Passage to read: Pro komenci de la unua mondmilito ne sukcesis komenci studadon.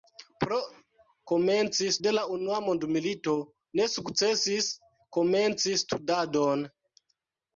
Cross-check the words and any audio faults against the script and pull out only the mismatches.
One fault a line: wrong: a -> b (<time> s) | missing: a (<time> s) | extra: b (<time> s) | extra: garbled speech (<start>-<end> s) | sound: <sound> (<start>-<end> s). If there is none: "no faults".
no faults